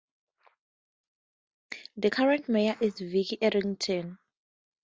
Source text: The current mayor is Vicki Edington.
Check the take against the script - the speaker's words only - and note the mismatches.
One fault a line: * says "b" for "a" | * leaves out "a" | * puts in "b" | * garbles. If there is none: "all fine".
all fine